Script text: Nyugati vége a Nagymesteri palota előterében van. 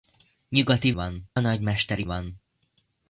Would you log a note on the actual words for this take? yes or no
yes